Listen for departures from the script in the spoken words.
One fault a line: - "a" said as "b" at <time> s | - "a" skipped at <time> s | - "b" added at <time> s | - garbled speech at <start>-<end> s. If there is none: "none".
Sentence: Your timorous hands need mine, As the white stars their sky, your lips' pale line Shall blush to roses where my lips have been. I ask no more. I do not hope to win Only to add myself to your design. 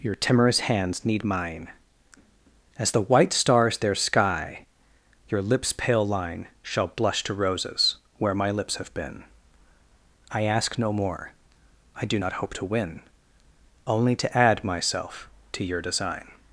none